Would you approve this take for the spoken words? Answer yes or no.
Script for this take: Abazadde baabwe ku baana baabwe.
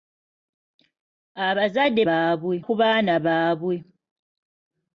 yes